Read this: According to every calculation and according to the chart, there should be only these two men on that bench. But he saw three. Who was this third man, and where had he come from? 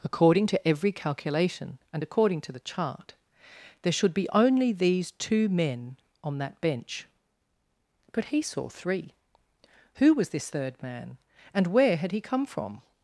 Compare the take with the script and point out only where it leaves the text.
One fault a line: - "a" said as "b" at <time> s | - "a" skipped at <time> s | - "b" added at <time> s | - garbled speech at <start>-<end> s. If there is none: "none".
none